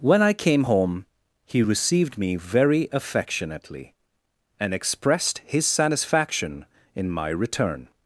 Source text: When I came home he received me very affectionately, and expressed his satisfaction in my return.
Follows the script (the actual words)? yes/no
yes